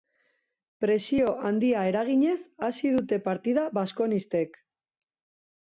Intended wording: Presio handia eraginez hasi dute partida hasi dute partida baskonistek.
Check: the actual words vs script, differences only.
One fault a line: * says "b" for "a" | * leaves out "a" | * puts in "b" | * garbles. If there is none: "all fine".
* leaves out "hasi dute partida"